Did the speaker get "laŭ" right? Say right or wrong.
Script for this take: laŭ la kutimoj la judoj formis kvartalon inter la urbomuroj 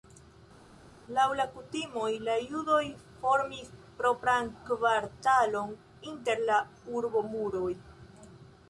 right